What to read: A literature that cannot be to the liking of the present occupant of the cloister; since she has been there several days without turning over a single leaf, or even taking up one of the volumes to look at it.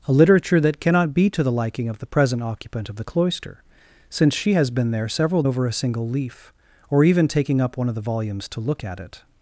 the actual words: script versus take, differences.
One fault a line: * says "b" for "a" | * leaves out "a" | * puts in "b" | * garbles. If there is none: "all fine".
* leaves out "days without turning"